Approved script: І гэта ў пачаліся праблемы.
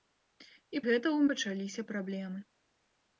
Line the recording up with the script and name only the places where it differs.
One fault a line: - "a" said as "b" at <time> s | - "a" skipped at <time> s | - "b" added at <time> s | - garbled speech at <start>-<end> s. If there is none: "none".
none